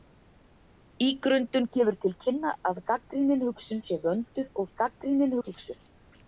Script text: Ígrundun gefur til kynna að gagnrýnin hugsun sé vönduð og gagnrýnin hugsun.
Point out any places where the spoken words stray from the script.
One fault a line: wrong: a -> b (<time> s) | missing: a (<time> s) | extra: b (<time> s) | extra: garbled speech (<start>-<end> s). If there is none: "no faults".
no faults